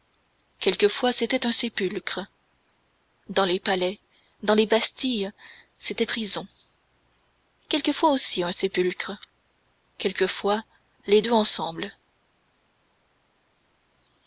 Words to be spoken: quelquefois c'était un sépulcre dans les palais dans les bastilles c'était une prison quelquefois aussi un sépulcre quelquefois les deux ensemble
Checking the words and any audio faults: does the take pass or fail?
fail